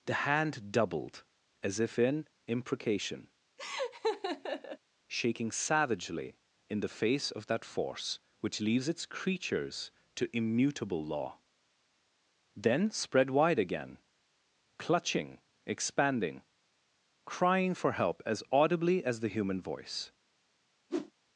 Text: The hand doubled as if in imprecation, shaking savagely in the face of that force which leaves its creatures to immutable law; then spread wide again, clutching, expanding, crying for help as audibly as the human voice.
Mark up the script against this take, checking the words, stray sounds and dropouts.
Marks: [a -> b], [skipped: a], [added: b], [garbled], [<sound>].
The hand doubled as if in imprecation, [laugh] shaking savagely in the face of that force which leaves its creatures to immutable law; then spread wide again, clutching, expanding, crying for help as audibly as the human voice. [whoosh]